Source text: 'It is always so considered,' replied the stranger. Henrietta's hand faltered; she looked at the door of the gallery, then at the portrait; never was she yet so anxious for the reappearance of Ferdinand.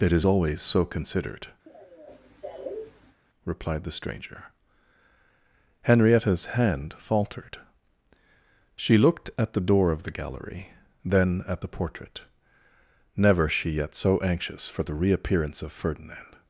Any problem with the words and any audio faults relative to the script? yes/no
yes